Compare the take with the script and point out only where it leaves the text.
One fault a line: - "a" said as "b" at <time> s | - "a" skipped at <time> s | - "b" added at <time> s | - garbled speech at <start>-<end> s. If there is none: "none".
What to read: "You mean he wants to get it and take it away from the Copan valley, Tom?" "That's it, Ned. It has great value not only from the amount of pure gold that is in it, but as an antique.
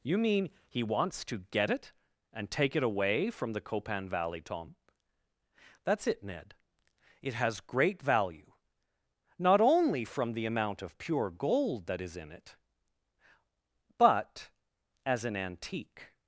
none